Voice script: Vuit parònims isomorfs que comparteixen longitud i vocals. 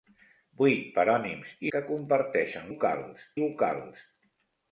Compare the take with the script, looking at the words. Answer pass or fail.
fail